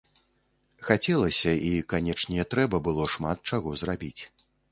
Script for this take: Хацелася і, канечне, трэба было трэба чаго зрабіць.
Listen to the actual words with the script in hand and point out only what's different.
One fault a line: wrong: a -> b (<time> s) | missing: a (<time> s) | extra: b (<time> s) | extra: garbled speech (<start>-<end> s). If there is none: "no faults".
wrong: трэба -> шмат (3.2 s)